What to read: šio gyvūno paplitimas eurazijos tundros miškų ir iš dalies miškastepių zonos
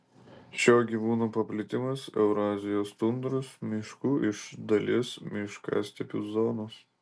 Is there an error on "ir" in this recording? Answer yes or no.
yes